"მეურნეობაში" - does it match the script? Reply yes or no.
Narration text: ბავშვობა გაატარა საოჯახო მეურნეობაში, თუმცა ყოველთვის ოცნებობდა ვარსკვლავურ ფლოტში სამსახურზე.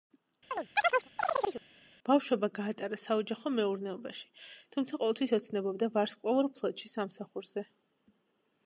yes